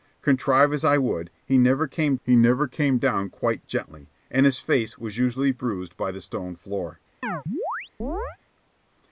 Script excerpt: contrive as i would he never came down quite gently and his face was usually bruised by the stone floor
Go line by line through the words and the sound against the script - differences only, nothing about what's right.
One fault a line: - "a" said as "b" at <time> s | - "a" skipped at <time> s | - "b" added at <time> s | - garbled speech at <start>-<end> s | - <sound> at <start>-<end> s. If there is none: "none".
- "he never came" added at 2.2 s
- chirp at 7.2-8.4 s